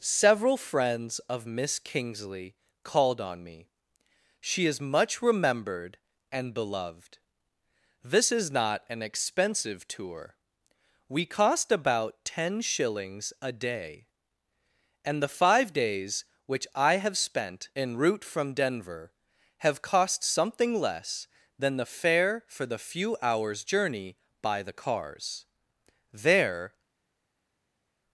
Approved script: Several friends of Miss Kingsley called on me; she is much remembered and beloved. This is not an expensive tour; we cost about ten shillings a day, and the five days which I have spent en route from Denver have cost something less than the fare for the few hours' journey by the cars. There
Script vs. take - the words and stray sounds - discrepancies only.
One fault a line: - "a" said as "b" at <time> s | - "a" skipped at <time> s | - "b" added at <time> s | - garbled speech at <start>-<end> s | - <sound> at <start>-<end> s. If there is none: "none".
none